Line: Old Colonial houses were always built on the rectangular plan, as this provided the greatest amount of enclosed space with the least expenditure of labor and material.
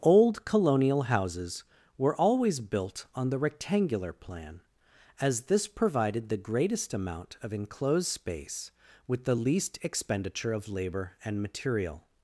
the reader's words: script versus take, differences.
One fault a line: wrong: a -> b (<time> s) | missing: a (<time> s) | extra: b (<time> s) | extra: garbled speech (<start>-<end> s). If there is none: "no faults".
no faults